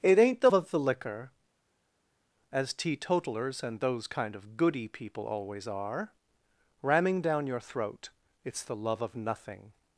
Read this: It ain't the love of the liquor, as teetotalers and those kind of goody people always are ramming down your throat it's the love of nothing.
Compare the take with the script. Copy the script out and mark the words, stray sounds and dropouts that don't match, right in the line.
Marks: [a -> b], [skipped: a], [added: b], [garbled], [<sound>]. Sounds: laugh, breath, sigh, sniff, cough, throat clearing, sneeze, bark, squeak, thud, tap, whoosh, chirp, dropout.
It ain't the [skipped: love] of the liquor, as teetotalers and those kind of goody people always are ramming down your throat it's the love of nothing.